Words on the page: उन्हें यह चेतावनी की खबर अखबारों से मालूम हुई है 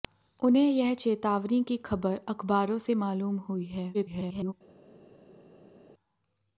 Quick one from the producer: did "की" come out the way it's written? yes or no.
yes